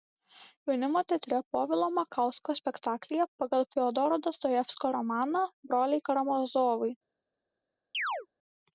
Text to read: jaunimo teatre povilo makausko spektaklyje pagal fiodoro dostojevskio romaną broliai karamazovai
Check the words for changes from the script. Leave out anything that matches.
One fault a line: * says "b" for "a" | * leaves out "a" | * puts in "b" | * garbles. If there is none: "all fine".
all fine